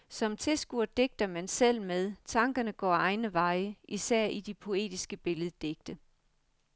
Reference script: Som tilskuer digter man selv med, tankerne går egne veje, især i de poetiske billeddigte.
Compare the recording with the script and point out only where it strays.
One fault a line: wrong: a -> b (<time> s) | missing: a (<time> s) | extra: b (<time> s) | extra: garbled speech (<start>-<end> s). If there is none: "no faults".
no faults